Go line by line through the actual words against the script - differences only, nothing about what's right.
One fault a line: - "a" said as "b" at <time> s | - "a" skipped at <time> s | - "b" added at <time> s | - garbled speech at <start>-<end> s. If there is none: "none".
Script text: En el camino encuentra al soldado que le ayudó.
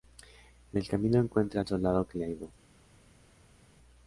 none